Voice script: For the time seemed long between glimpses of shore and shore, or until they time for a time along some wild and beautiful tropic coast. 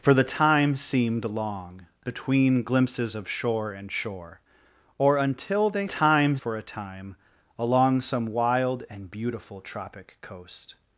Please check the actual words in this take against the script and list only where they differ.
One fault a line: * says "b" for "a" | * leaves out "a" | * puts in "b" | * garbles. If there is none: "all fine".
all fine